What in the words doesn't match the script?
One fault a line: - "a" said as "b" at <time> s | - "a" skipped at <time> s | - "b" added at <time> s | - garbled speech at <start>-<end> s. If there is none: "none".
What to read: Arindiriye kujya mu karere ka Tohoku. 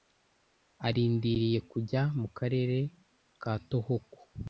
none